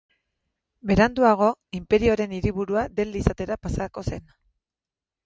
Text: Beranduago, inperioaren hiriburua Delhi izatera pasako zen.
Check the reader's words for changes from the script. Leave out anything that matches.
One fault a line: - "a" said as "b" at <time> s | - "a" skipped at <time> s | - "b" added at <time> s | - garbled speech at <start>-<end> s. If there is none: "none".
none